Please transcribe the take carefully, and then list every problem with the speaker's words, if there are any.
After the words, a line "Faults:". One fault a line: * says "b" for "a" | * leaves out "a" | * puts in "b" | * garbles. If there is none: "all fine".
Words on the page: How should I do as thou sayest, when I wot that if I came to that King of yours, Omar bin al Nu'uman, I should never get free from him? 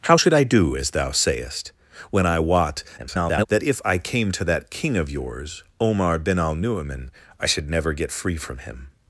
How should I do as thou sayest, when I wot [garbled] that if I came to that King of yours, Omar bin al Nu'uman, I should never get free from him?
Faults:
* garbles